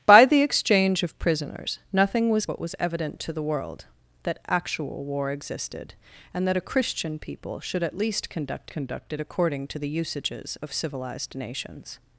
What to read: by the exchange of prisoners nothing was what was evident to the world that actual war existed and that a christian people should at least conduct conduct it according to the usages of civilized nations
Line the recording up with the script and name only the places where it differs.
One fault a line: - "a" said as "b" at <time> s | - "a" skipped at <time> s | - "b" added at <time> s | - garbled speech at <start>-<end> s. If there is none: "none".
none